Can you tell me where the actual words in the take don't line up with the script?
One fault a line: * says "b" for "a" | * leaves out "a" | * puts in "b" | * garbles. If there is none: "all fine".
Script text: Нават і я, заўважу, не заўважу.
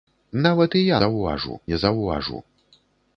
all fine